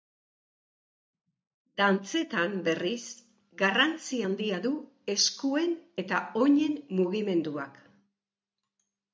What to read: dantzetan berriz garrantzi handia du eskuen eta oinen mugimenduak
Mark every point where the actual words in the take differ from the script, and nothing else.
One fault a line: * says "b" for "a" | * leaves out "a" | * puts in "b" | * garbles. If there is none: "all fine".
all fine